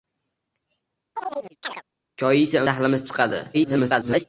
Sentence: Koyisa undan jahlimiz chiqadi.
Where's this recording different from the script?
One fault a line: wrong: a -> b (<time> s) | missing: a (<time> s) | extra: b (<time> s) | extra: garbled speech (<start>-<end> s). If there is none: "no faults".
missing: undan (2.6 s)
extra: garbled speech (3.5-4.2 s)